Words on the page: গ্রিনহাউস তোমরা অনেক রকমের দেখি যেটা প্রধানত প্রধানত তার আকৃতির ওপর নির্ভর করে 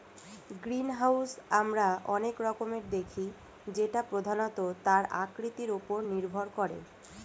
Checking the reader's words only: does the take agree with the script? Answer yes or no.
no